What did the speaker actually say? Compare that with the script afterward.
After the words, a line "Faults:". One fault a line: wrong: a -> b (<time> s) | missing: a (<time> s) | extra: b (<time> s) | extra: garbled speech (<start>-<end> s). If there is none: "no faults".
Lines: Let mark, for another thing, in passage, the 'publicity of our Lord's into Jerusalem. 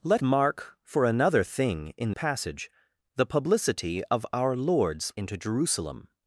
Let mark, for another thing, in passage, the 'publicity of our Lord's into Jerusalem.
Faults:
no faults